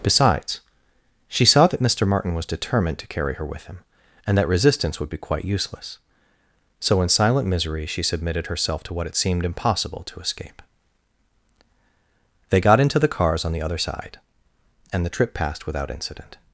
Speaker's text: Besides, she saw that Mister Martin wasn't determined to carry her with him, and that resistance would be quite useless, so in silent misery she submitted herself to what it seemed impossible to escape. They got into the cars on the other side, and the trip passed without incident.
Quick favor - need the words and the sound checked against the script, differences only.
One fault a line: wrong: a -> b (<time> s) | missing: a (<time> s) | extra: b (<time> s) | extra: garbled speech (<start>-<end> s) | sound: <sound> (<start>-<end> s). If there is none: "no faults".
wrong: wasn't -> was (2.3 s)